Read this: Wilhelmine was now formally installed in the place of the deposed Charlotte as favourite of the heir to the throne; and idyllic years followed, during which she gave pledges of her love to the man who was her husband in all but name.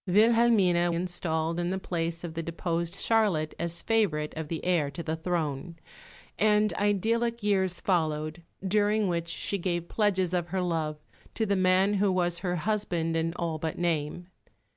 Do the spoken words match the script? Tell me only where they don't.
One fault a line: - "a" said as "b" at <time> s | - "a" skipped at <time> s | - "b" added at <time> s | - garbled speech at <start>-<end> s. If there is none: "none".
- "was now formally" skipped at 0.9 s